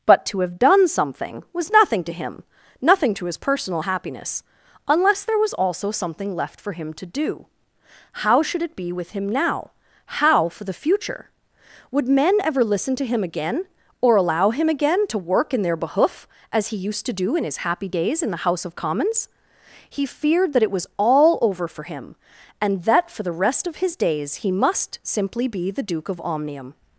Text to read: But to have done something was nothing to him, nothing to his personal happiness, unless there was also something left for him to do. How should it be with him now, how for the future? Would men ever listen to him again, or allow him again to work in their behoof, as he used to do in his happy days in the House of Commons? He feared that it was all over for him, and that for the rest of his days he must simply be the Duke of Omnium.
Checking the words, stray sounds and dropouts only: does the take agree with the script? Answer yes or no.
yes